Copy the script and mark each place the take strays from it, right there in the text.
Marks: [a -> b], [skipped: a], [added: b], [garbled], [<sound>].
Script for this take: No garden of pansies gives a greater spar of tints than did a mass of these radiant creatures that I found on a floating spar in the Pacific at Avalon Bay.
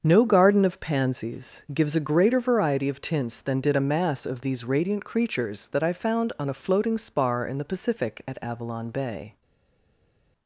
No garden of pansies gives a greater [spar -> variety] of tints than did a mass of these radiant creatures that I found on a floating spar in the Pacific at Avalon Bay.